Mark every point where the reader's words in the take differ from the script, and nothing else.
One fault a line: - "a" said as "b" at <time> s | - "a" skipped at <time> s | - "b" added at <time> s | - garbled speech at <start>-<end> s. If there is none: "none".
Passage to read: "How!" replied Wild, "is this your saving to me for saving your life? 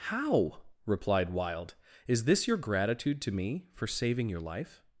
- "saving" said as "gratitude" at 2.6 s